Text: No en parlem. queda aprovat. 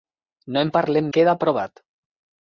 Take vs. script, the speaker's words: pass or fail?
pass